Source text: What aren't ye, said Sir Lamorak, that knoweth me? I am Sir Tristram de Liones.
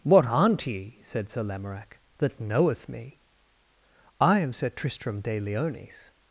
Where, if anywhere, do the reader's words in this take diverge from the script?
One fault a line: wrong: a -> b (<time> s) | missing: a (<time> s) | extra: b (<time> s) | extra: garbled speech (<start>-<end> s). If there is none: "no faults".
no faults